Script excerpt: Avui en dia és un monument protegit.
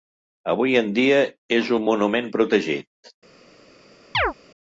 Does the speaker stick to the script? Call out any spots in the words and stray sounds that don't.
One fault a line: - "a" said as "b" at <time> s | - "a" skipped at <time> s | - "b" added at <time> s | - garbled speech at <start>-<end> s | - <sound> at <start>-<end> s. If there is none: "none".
- chirp at 4.1-4.3 s